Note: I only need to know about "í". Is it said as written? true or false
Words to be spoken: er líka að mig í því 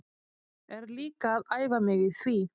true